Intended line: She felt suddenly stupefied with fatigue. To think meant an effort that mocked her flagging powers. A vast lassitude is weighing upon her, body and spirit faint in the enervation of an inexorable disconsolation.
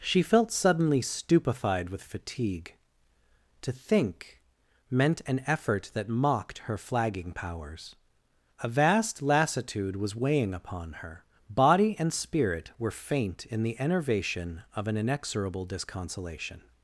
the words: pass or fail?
fail